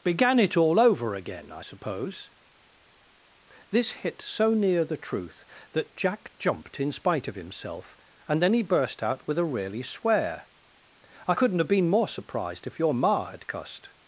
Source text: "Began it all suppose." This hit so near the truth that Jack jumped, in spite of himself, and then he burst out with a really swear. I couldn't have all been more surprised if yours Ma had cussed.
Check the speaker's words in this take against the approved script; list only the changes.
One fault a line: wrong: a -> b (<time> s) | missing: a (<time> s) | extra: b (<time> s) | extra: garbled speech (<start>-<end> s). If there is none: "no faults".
extra: over again I (0.8 s)
missing: all (11.7 s)
wrong: yours -> your (12.8 s)